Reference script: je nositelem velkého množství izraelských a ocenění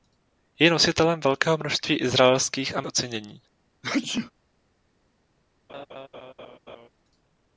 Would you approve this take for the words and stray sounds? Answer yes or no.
no